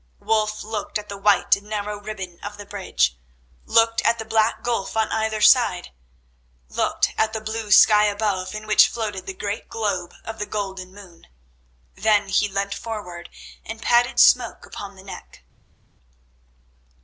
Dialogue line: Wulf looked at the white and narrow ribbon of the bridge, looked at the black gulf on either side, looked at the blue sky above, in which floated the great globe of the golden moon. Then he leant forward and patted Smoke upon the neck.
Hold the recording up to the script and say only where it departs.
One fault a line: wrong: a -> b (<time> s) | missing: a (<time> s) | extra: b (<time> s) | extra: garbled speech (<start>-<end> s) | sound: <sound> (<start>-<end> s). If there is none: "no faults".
no faults